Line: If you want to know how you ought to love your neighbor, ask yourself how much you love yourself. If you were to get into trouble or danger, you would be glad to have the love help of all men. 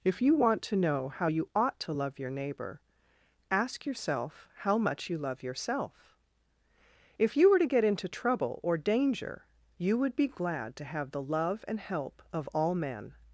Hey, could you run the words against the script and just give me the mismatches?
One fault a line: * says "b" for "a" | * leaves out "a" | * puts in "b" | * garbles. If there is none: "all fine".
* puts in "and"